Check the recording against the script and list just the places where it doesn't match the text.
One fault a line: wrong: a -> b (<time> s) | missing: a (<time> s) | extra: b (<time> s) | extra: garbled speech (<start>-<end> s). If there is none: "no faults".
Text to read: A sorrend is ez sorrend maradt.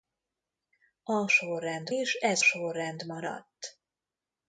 no faults